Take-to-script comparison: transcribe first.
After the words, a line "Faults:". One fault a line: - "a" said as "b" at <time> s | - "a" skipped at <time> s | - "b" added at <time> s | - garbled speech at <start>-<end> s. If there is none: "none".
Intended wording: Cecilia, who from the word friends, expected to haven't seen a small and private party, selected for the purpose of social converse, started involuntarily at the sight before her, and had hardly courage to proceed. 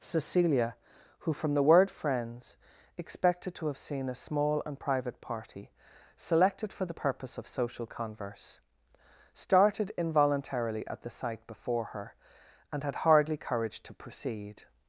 Cecilia, who from the word friends, expected to have seen a small and private party, selected for the purpose of social converse, started involuntarily at the sight before her, and had hardly courage to proceed.
Faults:
- "haven't" said as "have" at 3.7 s